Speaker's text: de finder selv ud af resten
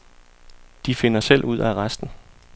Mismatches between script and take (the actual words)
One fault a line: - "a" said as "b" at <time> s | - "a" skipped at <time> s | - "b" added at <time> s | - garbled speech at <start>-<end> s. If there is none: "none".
none